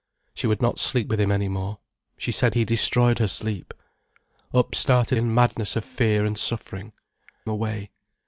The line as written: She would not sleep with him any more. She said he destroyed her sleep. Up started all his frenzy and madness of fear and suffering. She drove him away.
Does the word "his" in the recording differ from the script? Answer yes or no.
yes